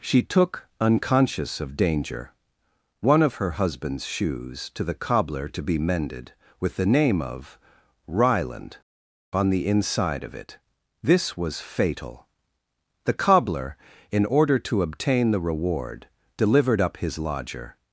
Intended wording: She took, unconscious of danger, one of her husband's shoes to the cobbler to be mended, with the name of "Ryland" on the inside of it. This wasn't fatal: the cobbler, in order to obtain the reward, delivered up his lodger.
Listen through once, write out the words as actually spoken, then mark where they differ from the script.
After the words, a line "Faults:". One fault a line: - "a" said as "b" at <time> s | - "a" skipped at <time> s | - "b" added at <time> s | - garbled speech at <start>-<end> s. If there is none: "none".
She took, unconscious of danger, one of her husband's shoes to the cobbler to be mended, with the name of "Ryland" on the inside of it. This was fatal: the cobbler, in order to obtain the reward, delivered up his lodger.
Faults:
- "wasn't" said as "was" at 11.4 s